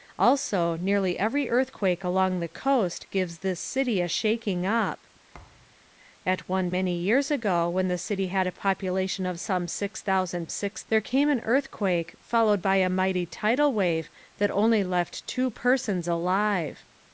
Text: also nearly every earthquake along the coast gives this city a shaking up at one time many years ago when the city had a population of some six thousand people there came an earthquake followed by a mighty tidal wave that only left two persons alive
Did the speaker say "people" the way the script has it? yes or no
no